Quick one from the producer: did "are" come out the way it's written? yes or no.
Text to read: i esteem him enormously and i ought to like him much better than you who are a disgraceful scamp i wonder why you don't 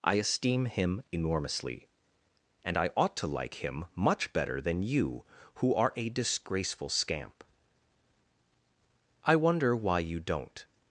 yes